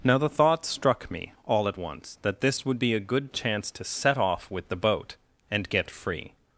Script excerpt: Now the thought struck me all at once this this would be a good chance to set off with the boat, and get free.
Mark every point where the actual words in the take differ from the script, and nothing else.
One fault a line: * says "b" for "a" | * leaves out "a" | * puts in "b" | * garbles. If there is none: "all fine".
* says "that" for "this"